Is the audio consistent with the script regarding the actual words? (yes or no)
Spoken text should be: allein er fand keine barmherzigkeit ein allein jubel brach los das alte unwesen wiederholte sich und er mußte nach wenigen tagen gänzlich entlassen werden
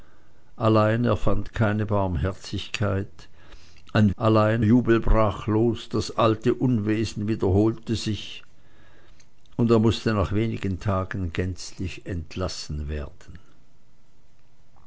yes